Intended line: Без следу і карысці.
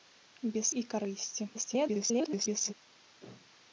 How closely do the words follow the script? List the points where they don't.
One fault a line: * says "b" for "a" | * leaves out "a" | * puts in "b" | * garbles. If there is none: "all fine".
* leaves out "следу"
* garbles